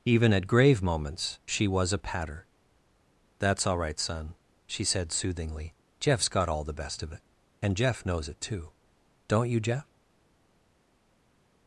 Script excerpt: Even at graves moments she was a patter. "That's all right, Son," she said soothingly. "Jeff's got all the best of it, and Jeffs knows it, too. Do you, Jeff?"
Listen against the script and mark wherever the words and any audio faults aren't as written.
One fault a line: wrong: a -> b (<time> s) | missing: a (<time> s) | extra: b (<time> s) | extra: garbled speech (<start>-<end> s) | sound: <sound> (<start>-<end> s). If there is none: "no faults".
wrong: graves -> grave (0.5 s)
wrong: Jeffs -> Jeff (7.8 s)
wrong: Do -> Don't (9.3 s)